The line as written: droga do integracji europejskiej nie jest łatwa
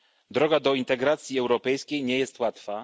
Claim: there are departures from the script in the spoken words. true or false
false